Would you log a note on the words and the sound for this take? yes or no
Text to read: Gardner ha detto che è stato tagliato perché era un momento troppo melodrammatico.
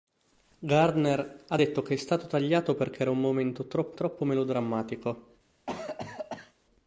yes